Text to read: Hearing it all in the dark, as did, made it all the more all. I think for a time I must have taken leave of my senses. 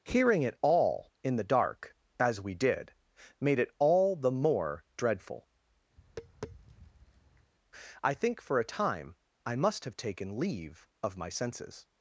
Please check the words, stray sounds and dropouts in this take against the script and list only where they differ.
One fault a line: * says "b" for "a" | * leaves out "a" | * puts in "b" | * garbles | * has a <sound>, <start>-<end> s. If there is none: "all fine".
* puts in "we"
* says "dreadful" for "all"
* has a tap, 6.0-7.5 s